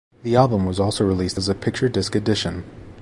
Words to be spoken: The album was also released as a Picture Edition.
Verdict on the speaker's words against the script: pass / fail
fail